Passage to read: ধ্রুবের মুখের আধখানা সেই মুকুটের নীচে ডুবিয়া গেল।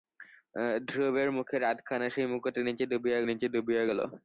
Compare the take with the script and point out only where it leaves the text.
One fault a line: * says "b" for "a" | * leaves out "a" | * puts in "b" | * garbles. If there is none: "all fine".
* puts in "নীচে ডুবিয়া"